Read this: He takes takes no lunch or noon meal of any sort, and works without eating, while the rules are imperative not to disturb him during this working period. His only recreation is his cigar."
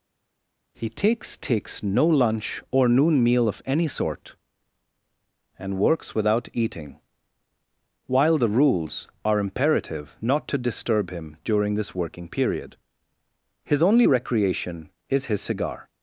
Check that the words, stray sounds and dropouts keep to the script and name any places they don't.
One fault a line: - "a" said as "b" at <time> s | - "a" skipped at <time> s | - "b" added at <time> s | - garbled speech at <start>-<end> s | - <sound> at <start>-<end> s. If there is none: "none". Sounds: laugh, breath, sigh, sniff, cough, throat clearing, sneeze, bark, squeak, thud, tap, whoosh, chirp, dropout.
none